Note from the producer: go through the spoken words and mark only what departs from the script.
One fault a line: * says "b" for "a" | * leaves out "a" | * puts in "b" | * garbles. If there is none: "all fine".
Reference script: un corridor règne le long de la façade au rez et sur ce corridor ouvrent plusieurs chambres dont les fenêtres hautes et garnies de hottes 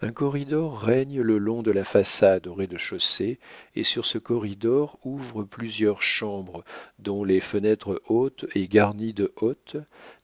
* puts in "de chaussée"